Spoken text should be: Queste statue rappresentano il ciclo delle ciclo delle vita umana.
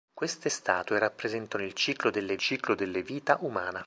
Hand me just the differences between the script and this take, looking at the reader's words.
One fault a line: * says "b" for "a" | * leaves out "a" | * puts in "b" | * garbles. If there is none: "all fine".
all fine